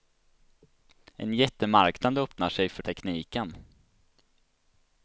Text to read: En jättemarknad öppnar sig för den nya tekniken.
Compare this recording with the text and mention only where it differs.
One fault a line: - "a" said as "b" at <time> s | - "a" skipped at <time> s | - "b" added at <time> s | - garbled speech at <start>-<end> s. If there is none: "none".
- "den nya" skipped at 2.8 s